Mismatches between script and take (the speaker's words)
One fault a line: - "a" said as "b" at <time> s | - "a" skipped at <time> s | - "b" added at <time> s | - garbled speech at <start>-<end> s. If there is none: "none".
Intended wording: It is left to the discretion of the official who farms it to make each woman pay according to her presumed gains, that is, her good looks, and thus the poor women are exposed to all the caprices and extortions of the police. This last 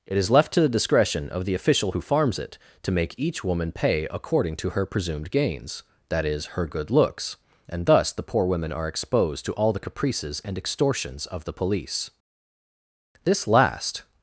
none